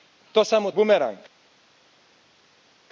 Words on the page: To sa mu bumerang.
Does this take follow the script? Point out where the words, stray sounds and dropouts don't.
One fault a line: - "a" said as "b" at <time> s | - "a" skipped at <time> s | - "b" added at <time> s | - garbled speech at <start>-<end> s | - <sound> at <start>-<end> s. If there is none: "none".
none